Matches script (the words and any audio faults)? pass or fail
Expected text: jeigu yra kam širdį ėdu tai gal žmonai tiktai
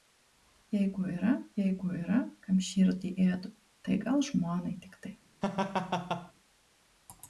fail